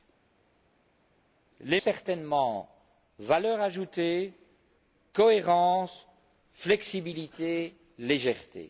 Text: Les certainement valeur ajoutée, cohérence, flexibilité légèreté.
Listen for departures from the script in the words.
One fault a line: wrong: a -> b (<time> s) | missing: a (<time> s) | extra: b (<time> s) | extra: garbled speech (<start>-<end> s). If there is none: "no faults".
no faults